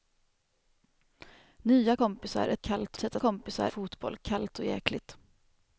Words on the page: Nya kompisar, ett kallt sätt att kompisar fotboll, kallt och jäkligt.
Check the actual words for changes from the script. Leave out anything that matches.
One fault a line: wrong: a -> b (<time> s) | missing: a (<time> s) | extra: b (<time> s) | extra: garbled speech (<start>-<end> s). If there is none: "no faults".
no faults